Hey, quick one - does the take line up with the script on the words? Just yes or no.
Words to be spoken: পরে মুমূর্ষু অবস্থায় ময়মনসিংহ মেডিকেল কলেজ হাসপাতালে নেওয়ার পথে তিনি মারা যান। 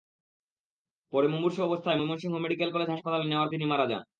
no